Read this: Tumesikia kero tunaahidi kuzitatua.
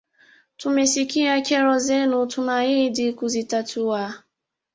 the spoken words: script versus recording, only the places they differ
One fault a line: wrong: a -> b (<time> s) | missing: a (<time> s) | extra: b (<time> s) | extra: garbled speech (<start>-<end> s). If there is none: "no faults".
extra: zenu (1.8 s)